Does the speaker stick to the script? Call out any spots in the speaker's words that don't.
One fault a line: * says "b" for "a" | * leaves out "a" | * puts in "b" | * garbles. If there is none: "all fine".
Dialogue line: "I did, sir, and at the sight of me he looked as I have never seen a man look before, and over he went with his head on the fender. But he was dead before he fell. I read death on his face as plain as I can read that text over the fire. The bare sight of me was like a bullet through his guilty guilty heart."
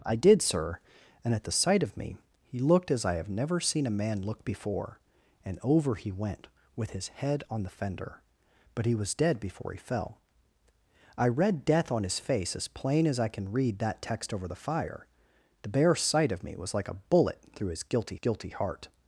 all fine